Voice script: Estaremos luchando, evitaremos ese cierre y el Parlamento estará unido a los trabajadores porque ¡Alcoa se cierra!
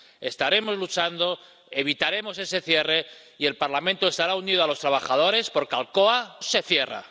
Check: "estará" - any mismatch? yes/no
no